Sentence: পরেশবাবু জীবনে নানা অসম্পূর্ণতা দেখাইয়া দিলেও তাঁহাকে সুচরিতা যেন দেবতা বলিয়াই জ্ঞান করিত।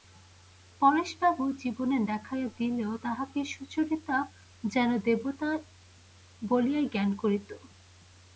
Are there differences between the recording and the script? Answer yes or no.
yes